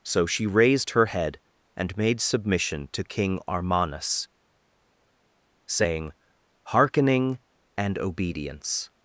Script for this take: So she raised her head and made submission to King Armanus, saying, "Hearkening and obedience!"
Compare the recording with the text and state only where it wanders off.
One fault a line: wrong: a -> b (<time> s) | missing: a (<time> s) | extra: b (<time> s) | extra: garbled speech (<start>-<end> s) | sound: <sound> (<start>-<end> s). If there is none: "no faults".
no faults